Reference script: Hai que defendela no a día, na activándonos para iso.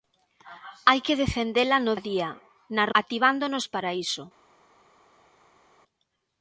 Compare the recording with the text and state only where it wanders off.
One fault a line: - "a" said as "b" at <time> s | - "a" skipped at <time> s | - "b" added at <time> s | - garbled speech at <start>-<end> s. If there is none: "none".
none